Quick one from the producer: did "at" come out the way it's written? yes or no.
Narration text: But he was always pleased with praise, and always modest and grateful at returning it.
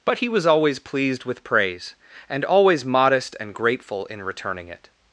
no